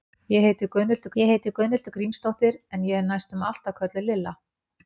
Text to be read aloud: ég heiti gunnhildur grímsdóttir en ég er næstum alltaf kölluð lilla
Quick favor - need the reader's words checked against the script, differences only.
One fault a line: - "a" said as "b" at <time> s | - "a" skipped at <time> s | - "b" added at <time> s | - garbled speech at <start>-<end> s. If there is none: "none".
- "ég heiti gunnhildur" added at 1.2 s